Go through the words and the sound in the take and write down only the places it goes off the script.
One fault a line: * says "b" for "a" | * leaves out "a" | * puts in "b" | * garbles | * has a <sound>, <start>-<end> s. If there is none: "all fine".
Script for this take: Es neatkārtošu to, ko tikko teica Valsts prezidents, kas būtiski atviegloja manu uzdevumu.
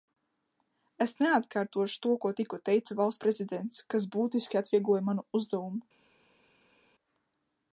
all fine